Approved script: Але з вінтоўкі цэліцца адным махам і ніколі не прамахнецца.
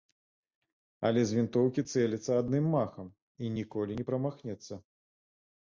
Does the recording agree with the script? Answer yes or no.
yes